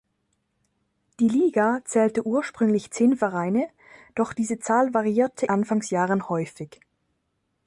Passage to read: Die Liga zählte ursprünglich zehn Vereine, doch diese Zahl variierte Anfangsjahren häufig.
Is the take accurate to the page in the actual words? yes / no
yes